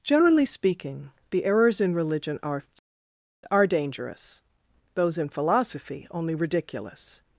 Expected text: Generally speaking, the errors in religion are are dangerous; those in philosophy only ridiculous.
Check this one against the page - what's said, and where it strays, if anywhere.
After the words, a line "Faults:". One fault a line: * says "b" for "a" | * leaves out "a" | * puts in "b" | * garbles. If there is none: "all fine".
Generally speaking, the errors in religion are are dangerous; those in philosophy only ridiculous.
Faults:
all fine